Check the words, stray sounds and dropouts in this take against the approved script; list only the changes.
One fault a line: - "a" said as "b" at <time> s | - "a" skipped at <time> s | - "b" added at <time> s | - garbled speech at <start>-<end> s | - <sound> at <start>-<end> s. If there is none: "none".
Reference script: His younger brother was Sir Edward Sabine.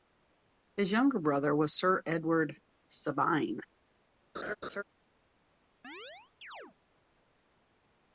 - laugh at 4.3-4.8 s
- chirp at 5.8-6.8 s